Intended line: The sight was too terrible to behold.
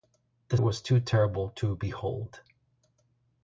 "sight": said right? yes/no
no